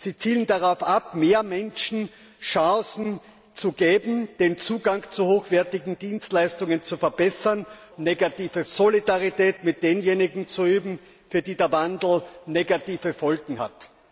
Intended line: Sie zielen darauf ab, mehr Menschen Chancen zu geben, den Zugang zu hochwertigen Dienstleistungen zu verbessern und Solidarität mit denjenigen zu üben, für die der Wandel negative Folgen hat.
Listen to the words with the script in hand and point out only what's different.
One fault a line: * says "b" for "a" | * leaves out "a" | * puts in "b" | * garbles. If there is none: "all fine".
* says "negative" for "und"